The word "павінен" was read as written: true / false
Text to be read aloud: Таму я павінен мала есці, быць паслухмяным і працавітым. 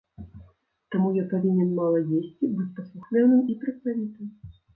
true